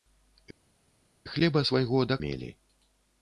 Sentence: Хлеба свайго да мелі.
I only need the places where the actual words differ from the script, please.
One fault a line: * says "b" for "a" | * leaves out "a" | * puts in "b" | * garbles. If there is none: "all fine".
all fine